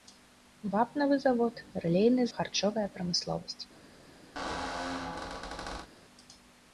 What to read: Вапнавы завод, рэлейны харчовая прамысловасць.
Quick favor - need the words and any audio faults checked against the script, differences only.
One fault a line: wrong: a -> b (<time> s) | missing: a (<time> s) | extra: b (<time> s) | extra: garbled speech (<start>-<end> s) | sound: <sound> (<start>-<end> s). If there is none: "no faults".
sound: squeak (4.4-5.9 s)